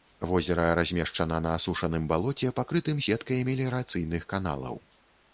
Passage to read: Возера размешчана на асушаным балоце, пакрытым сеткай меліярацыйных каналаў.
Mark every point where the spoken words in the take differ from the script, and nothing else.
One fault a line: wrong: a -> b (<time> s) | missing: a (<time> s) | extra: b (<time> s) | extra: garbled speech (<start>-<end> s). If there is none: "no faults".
no faults